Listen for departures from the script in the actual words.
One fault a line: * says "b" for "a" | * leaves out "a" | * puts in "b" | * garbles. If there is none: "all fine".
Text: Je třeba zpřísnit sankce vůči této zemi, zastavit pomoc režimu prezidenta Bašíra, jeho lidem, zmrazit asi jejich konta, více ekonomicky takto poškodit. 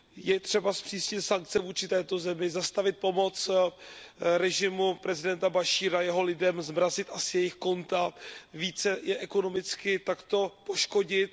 * puts in "je"